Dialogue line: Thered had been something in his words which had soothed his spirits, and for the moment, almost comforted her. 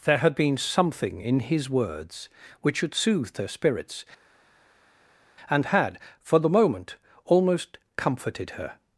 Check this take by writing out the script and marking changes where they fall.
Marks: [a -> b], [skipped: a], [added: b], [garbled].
[Thered -> There] had been something in his words which had soothed [his -> her] spirits, and [added: had] for the moment, almost comforted her.